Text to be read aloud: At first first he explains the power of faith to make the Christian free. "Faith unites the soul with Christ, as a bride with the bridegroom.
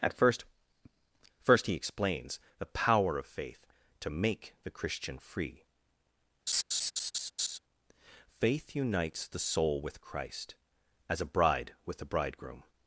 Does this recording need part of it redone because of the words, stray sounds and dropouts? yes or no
yes